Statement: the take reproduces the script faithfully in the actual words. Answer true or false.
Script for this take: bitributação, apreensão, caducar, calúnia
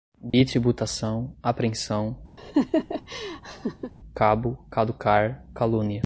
false